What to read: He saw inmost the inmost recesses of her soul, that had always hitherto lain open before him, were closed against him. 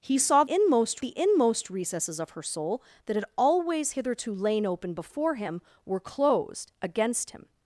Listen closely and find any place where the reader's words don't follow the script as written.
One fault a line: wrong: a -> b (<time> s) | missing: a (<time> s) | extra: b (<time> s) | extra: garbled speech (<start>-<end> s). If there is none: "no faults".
no faults